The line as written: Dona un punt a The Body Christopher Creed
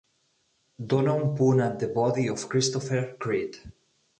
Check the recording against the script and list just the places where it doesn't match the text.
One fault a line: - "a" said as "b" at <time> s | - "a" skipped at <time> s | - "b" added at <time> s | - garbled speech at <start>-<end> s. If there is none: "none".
- "of" added at 2.3 s